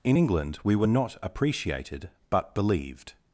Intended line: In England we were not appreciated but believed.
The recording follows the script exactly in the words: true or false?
true